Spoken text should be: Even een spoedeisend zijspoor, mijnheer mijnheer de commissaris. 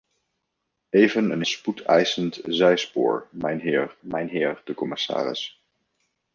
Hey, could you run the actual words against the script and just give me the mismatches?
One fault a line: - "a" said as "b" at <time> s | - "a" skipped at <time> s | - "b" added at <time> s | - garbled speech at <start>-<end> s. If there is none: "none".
none